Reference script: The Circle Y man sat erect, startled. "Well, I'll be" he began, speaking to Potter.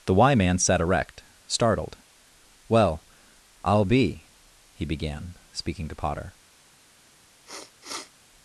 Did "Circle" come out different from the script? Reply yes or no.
yes